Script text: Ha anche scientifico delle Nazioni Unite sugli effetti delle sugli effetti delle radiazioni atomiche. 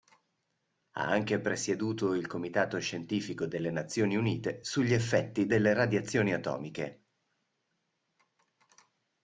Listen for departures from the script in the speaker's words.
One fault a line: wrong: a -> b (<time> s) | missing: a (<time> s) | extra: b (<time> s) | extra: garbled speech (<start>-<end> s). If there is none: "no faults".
extra: presieduto il Comitato (1.4 s)
missing: sugli effetti delle (5.7 s)